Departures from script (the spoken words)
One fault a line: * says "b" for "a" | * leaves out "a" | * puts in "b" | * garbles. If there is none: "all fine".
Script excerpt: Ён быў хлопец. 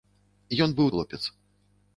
all fine